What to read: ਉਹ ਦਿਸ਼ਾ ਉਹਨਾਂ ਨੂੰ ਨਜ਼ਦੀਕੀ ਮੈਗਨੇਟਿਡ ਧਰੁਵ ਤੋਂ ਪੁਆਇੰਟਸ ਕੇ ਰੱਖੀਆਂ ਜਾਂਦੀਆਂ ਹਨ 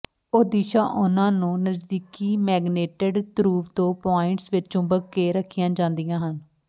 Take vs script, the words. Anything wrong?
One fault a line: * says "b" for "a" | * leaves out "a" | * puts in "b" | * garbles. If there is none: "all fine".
* puts in "ਵਿੱਚ ਚੁੰਬਕ"